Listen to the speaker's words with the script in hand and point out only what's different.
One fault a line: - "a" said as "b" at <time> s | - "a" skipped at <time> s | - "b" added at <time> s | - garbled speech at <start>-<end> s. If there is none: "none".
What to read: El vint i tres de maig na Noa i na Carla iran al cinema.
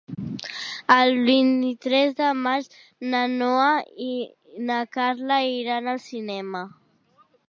none